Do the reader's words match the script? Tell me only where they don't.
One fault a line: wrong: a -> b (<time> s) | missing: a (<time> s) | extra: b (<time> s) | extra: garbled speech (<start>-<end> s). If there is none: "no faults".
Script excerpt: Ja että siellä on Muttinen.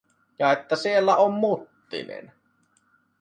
no faults